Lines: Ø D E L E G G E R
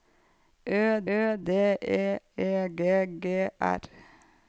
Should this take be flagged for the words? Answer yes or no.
yes